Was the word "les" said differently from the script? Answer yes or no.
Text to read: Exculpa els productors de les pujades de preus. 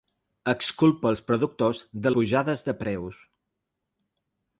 yes